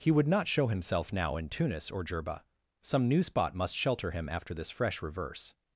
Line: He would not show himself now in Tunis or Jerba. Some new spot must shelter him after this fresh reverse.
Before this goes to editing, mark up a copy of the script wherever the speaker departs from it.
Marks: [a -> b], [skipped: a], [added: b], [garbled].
He would not show himself now in Tunis or Jerba. Some new spot must shelter him after this fresh reverse.